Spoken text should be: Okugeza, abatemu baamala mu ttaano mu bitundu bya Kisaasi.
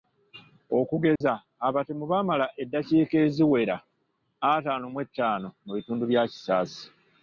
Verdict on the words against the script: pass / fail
fail